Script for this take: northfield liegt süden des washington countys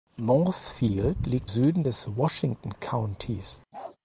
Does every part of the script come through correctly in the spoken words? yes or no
yes